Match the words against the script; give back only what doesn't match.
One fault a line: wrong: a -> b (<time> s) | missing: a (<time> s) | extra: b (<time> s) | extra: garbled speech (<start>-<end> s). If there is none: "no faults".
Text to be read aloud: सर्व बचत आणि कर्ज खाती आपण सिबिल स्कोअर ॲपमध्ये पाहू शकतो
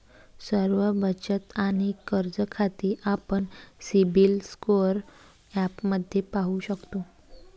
no faults